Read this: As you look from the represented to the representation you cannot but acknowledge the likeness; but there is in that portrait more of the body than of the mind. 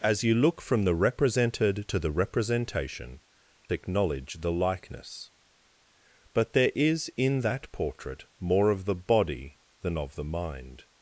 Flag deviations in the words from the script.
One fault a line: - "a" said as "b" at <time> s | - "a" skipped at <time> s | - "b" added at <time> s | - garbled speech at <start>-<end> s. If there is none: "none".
- "you cannot but" skipped at 3.2 s